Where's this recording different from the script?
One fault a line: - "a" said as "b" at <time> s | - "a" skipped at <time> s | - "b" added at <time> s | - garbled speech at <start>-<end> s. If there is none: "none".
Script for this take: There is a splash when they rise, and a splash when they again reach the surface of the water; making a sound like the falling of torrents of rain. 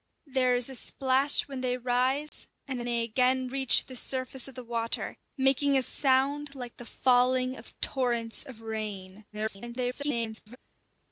- "splash when" skipped at 2.9 s
- garbled speech at 9.3-10.6 s